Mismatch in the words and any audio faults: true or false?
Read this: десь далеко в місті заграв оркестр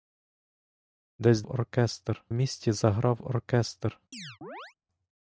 true